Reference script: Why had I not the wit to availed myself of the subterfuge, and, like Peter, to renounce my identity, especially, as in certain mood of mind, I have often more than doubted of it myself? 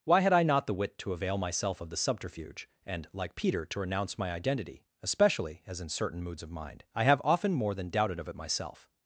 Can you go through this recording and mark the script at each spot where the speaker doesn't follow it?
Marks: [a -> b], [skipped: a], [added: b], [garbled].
Why had I not the wit to [availed -> avail] myself of the subterfuge, and, like Peter, to renounce my identity, especially, as in certain [mood -> moods] of mind, I have often more than doubted of it myself?